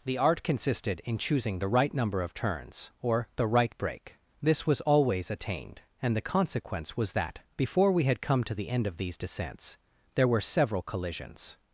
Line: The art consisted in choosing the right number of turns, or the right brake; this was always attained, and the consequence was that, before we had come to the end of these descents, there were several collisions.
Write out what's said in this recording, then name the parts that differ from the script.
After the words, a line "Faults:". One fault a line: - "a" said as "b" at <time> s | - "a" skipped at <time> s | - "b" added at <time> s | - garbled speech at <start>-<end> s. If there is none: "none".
The art consisted in choosing the right number of turns, or the right brake; this was always attained, and the consequence was that, before we had come to the end of these descents, there were several collisions.
Faults:
none